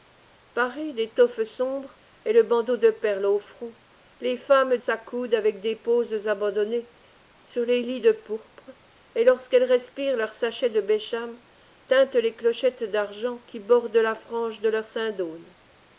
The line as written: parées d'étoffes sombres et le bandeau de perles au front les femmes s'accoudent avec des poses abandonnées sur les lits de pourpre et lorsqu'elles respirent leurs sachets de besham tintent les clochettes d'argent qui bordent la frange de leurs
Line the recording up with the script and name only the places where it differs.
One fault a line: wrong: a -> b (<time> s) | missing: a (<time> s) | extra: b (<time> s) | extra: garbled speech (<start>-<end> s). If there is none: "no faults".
no faults